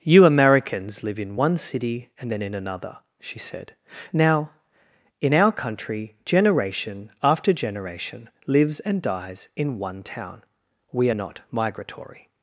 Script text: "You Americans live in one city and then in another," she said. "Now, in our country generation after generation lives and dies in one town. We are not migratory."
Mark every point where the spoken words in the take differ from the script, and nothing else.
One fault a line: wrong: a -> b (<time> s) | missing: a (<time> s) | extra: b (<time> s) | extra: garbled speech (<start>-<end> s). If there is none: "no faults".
no faults